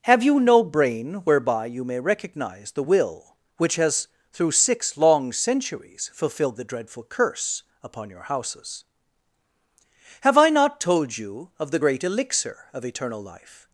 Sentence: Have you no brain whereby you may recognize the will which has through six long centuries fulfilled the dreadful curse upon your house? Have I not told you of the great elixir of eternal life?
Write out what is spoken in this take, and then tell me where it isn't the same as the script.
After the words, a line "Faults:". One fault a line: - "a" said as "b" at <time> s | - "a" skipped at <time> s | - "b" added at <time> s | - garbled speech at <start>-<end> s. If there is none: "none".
Have you no brain whereby you may recognize the will which has through six long centuries fulfilled the dreadful curse upon your houses? Have I not told you of the great elixir of eternal life?
Faults:
- "house" said as "houses" at 8.2 s